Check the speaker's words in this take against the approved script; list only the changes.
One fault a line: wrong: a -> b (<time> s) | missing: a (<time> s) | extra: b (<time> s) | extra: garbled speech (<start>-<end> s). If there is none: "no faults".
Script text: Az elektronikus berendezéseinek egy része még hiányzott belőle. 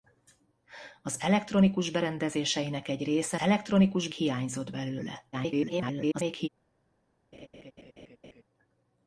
wrong: még -> elektronikus (3.4 s)
extra: garbled speech (5.3-6.5 s)